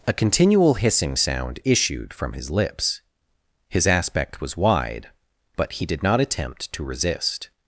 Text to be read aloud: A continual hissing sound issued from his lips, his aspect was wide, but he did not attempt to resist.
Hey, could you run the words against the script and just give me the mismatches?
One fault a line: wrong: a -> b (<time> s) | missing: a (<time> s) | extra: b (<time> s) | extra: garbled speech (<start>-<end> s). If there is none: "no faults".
no faults